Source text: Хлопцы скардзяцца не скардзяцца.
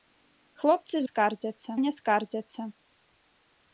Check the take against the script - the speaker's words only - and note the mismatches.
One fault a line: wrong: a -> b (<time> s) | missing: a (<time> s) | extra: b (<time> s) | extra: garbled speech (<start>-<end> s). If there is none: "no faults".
no faults